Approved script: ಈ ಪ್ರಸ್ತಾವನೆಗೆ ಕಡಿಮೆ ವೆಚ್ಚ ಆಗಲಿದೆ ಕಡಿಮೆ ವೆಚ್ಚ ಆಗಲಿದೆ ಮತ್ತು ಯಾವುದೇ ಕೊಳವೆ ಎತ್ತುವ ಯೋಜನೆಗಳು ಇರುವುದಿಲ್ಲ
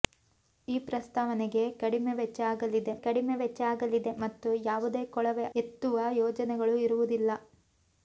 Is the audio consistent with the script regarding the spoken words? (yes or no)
yes